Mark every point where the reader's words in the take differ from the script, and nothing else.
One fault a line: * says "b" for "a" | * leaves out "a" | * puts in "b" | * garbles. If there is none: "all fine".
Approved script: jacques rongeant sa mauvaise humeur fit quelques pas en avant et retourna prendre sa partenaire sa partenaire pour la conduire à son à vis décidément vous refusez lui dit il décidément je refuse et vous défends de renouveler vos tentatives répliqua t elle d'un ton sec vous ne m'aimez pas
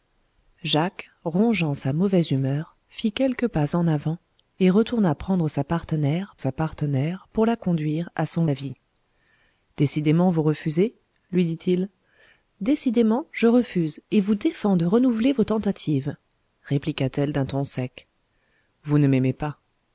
all fine